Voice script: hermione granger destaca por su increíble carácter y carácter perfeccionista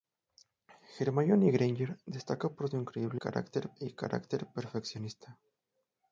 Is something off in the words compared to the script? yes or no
no